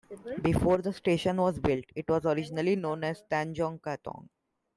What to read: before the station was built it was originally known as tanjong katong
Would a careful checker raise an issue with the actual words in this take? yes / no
no